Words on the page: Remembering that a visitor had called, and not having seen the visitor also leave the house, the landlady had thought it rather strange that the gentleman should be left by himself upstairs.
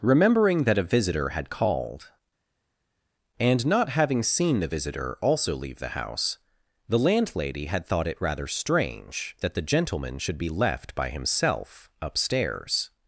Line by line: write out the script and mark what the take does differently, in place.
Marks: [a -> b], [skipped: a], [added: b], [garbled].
Remembering that a visitor had called, and not having seen the visitor also leave the house, the landlady had thought it rather strange that the gentleman should be left by himself upstairs.